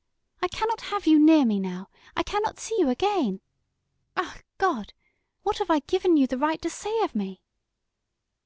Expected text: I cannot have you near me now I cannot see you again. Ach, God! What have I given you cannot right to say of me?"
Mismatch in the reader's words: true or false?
true